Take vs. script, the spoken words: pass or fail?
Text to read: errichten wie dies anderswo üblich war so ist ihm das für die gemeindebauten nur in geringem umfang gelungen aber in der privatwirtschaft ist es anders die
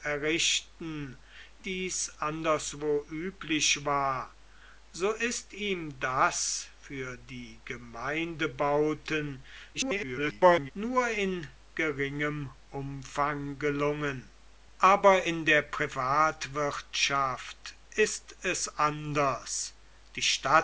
fail